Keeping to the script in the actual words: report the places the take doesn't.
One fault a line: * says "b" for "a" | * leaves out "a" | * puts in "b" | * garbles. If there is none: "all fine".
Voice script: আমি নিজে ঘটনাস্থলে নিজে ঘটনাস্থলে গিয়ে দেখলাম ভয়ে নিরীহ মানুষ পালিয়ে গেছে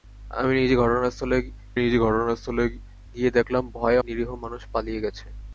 all fine